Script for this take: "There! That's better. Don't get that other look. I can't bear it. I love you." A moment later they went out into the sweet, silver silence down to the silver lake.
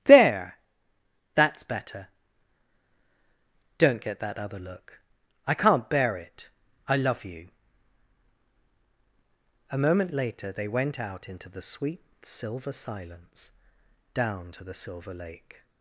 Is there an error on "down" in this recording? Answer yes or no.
no